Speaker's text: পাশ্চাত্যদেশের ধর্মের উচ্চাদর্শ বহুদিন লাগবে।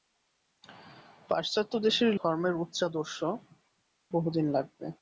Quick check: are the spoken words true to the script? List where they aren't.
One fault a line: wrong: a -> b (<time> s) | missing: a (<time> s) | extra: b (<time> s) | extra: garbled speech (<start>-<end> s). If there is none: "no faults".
no faults